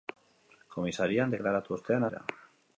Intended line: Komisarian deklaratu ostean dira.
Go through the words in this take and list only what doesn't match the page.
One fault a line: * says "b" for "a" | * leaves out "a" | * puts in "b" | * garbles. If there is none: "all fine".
all fine